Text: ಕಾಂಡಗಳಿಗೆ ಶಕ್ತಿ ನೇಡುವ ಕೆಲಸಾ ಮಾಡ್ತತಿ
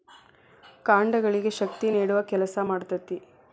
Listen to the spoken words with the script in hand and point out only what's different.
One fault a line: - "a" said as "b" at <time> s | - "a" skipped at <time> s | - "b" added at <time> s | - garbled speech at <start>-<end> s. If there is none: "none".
none